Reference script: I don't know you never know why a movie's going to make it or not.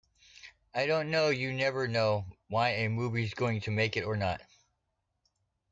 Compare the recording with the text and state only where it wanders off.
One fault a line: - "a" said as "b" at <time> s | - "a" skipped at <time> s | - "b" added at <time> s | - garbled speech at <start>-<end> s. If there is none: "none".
none